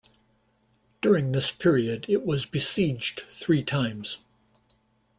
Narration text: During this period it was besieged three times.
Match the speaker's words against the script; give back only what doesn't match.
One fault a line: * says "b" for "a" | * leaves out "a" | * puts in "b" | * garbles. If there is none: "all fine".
all fine